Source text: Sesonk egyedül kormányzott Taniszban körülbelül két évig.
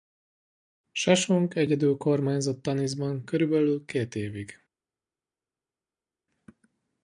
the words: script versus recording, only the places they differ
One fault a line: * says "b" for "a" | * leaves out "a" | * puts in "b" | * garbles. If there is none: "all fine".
all fine